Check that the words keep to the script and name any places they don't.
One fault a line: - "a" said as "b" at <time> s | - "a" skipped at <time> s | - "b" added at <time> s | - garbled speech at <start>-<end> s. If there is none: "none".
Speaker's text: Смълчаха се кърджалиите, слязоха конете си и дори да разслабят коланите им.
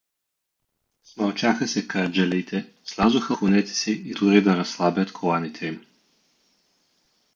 none